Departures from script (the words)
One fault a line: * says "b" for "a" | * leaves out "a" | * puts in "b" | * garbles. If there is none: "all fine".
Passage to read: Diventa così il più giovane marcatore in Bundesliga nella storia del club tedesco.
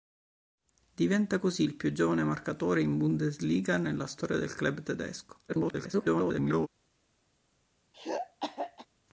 * garbles